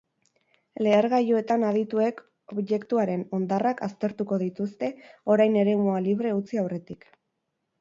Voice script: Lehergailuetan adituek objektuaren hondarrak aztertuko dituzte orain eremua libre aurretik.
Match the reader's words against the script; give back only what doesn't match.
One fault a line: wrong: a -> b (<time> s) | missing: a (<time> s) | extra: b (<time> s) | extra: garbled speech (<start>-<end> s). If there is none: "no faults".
extra: utzi (6.4 s)